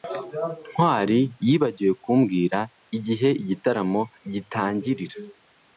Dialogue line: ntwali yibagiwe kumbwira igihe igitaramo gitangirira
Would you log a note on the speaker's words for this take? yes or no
no